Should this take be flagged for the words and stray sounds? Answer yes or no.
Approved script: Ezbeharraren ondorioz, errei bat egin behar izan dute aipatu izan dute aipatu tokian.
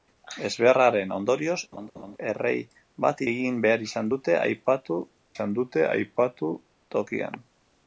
yes